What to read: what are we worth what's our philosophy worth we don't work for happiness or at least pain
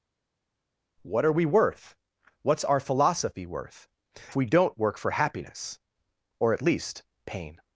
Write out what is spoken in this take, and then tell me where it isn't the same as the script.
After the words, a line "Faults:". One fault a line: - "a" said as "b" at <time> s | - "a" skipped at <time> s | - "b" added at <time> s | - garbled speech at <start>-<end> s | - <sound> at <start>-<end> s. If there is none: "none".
what are we worth what's our philosophy worth we don't work for happiness or at least pain
Faults:
none